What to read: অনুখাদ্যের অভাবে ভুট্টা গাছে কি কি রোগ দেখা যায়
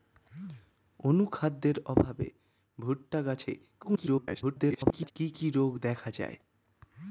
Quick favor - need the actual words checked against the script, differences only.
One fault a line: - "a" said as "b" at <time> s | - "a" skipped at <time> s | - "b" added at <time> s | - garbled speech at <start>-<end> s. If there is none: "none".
- garbled speech at 3.8-5.1 s